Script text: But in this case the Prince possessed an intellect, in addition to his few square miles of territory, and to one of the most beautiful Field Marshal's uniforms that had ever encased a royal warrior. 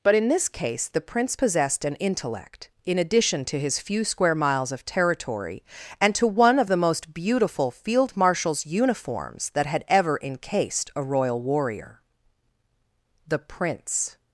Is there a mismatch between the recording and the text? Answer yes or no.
yes